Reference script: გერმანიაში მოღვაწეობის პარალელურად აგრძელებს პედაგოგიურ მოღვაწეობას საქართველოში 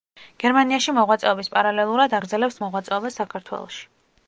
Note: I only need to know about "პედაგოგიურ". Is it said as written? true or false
false